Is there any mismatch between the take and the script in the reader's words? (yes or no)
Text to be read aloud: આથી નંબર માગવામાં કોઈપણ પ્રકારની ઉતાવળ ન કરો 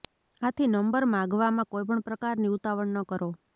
no